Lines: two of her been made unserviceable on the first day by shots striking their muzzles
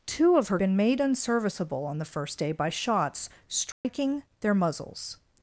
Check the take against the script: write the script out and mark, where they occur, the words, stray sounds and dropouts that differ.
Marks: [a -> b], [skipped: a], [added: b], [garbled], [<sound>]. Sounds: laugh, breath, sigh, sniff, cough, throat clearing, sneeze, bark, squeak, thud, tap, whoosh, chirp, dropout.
two of her been made unserviceable on the first day by shots striking [dropout] their muzzles